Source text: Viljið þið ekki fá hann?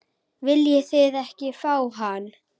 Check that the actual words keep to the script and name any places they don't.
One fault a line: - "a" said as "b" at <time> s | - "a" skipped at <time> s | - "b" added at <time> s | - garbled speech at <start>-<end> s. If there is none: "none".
none